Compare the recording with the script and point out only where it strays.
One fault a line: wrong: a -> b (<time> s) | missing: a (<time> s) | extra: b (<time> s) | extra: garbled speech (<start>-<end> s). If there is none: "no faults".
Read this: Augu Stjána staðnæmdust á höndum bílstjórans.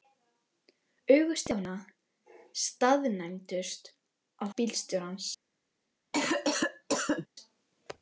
missing: höndum (4.4 s)